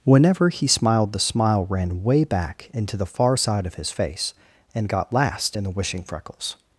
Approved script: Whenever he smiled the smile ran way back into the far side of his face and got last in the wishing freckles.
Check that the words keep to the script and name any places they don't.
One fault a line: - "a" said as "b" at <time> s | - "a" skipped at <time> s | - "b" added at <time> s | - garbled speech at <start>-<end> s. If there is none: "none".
none